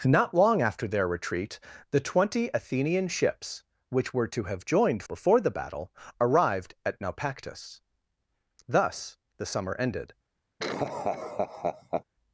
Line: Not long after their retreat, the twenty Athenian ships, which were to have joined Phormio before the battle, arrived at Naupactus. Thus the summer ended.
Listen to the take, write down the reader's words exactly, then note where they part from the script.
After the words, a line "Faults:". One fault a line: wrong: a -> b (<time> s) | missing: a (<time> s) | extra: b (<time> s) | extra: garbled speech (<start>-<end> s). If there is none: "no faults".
Not long after their retreat, the twenty Athenian ships, which were to have joined Before the battle, arrived at Naupactus. Thus the summer ended.
Faults:
missing: Phormio (5.0 s)